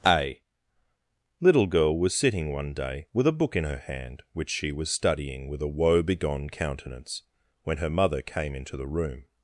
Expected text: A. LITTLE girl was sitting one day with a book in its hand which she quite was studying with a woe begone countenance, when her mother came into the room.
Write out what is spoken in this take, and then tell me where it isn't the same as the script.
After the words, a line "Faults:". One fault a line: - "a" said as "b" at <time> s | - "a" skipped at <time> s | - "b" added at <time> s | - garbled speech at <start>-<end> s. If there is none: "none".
A. LITTLE girl was sitting one day with a book in her hand which she was studying with a woe begone countenance, when her mother came into the room.
Faults:
- "its" said as "her" at 3.6 s
- "quite" skipped at 4.7 s